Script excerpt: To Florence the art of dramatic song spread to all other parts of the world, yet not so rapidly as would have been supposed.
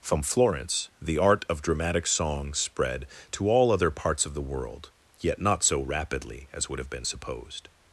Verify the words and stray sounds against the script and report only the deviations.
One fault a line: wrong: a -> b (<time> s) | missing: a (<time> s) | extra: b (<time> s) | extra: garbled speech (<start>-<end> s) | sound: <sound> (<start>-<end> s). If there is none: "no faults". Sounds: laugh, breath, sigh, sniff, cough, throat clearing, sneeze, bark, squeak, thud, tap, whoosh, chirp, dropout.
wrong: To -> From (0.0 s)